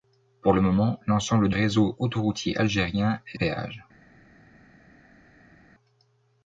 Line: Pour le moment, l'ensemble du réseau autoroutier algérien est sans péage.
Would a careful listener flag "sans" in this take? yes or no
yes